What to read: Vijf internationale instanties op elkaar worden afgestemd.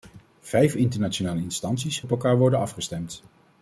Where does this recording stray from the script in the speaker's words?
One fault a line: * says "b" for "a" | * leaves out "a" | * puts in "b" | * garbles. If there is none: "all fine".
all fine